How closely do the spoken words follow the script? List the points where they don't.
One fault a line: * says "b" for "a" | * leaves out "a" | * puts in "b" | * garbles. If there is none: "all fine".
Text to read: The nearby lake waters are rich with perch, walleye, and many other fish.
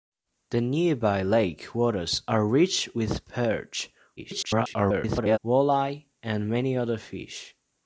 * garbles